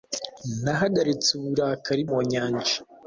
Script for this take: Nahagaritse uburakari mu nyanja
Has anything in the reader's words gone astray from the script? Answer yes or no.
no